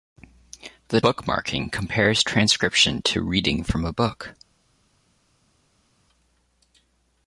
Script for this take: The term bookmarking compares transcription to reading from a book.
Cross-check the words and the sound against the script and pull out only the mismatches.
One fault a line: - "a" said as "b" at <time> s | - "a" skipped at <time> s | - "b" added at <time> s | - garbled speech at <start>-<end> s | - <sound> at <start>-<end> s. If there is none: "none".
- "term" skipped at 1.0 s